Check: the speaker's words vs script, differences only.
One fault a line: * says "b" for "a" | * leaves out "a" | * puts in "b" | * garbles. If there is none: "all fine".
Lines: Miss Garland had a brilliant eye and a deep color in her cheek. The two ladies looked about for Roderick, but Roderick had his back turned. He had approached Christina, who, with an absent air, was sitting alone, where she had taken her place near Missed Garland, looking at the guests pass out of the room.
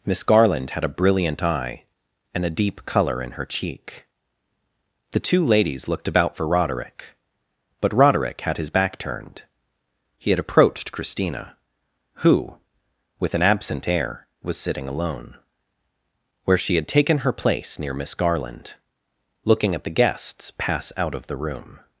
* says "Miss" for "Missed"